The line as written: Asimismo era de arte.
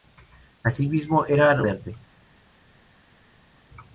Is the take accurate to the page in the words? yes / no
yes